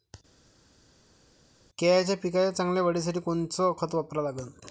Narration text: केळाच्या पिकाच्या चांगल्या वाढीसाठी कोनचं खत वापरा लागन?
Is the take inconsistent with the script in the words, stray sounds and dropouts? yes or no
no